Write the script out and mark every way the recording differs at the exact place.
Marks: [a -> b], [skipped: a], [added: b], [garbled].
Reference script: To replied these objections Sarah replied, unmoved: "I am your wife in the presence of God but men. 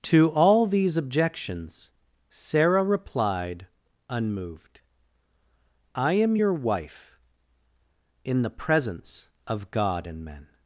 To [replied -> all] these objections Sarah replied, unmoved: "I am your wife in the presence of God [but -> and] men.